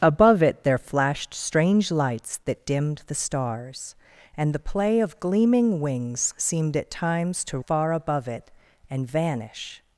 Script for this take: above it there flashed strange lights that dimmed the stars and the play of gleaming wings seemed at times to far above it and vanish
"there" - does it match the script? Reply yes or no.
yes